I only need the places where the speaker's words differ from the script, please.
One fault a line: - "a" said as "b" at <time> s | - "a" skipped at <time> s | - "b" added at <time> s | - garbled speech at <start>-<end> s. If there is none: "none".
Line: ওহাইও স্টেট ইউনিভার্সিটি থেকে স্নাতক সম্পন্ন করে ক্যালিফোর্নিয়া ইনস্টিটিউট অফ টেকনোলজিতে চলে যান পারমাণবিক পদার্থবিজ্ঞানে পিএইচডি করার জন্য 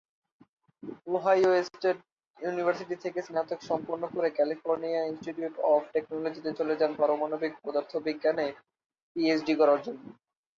none